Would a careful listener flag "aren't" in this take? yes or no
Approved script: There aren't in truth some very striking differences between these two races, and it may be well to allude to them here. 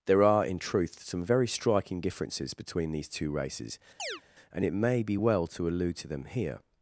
yes